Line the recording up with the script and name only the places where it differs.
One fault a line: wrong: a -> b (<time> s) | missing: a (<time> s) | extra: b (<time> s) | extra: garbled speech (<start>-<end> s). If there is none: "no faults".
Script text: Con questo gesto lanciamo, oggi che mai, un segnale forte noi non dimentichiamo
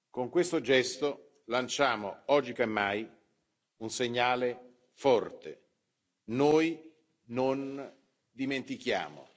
no faults